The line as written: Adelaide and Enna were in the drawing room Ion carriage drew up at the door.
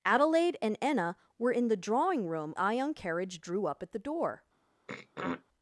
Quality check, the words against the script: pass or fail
pass